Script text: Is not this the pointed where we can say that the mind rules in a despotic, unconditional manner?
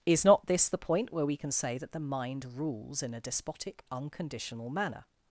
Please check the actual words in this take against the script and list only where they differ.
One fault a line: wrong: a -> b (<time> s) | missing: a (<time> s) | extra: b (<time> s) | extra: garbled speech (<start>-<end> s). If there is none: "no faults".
wrong: pointed -> point (0.8 s)